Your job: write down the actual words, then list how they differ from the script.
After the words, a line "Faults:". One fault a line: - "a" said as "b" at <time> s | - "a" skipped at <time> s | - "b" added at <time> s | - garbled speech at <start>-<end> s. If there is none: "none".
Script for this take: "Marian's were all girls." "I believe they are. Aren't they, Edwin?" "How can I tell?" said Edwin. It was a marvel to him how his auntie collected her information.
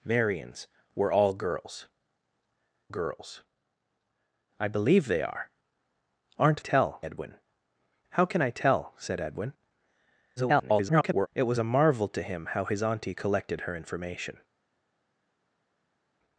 "Marian's were all girls girls." "I believe they are. Aren't tell, Edwin?" "How can I tell?" said Edwin. [garbled] It was a marvel to him how his auntie collected her information.
Faults:
- "girls" added at 2.9 s
- "they" said as "tell" at 6.6 s
- garbled speech at 10.4-11.3 s